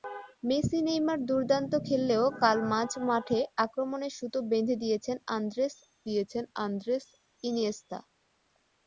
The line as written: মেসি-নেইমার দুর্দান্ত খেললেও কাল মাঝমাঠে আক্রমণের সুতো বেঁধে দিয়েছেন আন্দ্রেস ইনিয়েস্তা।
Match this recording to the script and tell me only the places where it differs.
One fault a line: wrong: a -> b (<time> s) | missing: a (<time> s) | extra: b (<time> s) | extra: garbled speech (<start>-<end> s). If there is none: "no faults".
extra: দিয়েছেন আন্দ্রেস (6.1 s)